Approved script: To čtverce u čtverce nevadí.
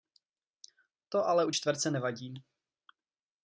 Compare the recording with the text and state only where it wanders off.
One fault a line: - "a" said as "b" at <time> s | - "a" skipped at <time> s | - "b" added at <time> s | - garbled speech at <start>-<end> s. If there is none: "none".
- "čtverce" said as "ale" at 1.2 s